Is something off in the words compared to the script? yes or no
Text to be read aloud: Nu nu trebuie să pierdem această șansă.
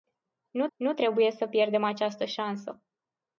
no